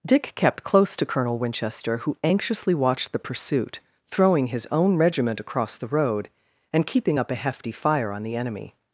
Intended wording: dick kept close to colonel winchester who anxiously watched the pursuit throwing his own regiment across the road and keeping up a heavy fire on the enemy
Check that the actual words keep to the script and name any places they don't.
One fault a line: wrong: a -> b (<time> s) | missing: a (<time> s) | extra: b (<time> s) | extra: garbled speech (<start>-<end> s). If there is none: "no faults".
wrong: heavy -> hefty (7.4 s)